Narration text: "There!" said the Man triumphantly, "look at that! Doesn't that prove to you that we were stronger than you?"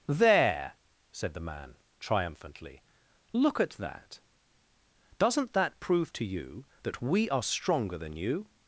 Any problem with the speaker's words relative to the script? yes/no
yes